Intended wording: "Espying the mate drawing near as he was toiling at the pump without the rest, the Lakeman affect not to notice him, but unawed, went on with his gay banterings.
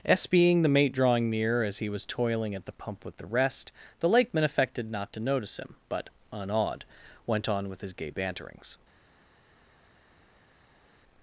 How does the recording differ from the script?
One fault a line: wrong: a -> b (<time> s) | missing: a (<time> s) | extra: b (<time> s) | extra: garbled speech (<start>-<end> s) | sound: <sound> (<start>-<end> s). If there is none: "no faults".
wrong: without -> with (3.0 s)
wrong: affect -> affected (4.4 s)